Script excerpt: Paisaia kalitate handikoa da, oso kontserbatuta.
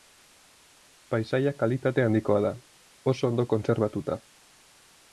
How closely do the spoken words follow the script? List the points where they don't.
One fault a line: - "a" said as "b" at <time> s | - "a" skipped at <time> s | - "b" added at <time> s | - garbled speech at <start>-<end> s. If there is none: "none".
- "ondo" added at 3.3 s